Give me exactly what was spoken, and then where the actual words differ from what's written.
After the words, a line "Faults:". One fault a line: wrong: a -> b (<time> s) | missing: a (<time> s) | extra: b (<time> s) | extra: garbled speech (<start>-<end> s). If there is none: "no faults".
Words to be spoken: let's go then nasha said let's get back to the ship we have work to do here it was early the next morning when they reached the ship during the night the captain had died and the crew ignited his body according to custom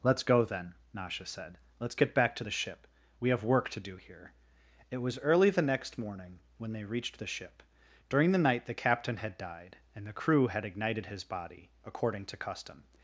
let's go then nasha said let's get back to the ship we have work to do here it was early the next morning when they reached the ship during the night the captain had died and the crew had ignited his body according to custom
Faults:
extra: had (10.5 s)